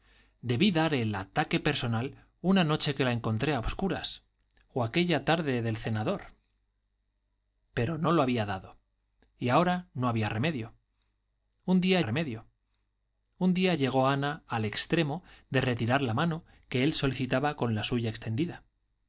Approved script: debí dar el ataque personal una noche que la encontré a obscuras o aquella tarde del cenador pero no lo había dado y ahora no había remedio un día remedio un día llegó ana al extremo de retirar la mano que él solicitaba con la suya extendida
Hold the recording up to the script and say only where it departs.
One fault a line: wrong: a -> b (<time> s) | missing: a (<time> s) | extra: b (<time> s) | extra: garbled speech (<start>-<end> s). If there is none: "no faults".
no faults